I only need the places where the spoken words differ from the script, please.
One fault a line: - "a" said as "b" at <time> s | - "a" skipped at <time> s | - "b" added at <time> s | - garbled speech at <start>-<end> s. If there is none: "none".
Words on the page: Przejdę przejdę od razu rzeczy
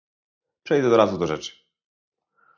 - "przejdę" skipped at 0.9 s
- "do" added at 1.2 s